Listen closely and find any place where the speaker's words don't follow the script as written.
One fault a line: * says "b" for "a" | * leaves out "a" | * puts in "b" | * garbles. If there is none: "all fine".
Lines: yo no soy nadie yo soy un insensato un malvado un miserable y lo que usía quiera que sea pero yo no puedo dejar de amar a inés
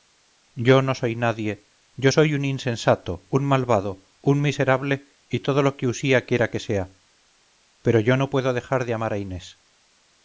* puts in "todo"